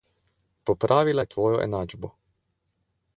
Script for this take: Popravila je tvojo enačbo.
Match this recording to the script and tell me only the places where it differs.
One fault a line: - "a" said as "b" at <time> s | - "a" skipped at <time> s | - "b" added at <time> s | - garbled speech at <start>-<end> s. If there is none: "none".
none